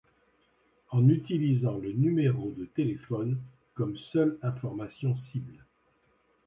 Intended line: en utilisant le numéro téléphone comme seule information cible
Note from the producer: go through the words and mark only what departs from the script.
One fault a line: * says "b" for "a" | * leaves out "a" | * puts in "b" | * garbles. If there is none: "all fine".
* puts in "de"